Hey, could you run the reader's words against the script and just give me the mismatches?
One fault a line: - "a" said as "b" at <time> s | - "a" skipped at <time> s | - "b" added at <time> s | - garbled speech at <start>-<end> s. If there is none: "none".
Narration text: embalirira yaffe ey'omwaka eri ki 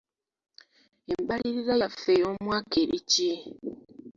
none